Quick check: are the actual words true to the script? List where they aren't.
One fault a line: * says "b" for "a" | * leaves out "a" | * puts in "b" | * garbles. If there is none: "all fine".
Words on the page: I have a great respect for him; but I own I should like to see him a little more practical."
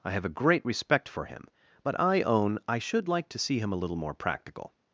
all fine